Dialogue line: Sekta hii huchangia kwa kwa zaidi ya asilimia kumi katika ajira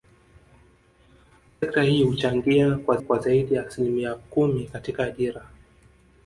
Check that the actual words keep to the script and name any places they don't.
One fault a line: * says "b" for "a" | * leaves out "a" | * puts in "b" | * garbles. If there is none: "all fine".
all fine